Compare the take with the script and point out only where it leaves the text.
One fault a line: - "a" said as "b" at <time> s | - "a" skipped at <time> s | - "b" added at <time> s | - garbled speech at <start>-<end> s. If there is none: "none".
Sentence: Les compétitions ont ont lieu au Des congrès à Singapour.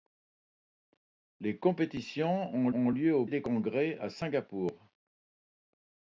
none